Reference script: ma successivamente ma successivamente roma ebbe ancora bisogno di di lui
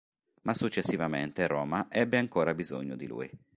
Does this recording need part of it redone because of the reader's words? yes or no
yes